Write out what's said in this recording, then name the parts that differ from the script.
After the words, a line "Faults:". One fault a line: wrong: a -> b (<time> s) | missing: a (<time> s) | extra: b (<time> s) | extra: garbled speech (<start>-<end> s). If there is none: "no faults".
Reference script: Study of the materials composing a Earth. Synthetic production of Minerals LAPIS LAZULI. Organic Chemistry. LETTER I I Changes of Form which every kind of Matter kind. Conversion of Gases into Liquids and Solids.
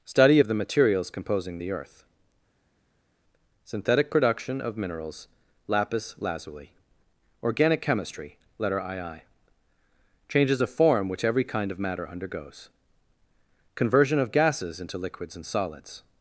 Study of the materials composing the Earth. Synthetic production of Minerals LAPIS LAZULI. Organic Chemistry. LETTER I I Changes of Form which every kind of Matter undergoes. Conversion of Gases into Liquids and Solids.
Faults:
wrong: a -> the (1.6 s)
wrong: kind -> undergoes (12.1 s)